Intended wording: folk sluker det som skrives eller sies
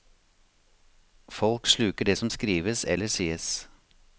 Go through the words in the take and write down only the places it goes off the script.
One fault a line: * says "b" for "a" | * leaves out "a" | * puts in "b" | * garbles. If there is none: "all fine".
all fine